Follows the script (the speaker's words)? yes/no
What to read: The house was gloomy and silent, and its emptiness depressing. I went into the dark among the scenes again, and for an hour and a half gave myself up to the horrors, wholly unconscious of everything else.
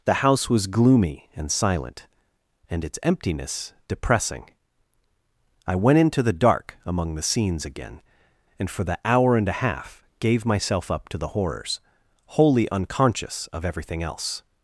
no